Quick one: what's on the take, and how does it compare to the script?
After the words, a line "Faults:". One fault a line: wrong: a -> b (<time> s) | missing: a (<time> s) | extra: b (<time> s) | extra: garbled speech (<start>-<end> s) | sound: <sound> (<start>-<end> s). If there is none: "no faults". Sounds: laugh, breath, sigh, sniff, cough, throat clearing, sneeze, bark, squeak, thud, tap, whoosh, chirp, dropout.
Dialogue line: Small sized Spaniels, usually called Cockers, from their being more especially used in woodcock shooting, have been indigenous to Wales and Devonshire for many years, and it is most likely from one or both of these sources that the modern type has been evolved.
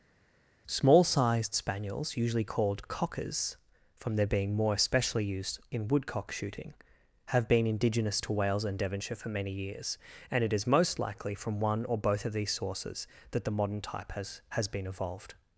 Small sized Spaniels, usually called Cockers, from their being more especially used in woodcock shooting, have been indigenous to Wales and Devonshire for many years, and it is most likely from one or both of these sources that the modern type has has been evolved.
Faults:
extra: has (14.5 s)